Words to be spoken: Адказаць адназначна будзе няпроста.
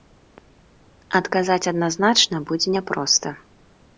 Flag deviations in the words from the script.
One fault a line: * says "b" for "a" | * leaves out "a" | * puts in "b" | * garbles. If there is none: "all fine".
all fine